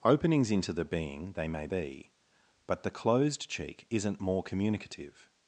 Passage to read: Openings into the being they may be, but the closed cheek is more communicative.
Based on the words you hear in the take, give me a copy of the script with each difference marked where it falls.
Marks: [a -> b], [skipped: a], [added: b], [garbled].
Openings into the being they may be, but the closed cheek [is -> isn't] more communicative.